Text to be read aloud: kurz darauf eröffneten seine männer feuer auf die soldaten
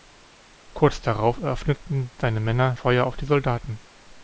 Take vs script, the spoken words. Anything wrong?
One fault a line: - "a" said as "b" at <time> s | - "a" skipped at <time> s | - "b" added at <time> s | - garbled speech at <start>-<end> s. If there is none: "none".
none